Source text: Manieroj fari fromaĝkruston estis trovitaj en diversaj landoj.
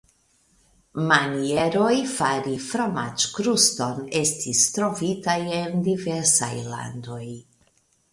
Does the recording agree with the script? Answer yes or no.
yes